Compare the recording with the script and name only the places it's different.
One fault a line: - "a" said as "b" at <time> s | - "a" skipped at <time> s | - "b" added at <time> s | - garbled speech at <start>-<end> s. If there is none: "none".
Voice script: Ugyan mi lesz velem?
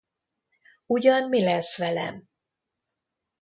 none